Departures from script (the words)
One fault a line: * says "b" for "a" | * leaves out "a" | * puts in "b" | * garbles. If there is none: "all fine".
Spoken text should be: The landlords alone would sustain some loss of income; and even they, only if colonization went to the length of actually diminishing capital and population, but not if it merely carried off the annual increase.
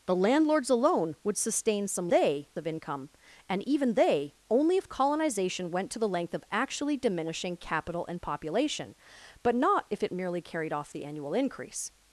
* says "they" for "loss"